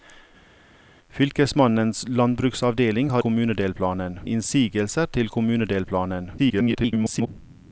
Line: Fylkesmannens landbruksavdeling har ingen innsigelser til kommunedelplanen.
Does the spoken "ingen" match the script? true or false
false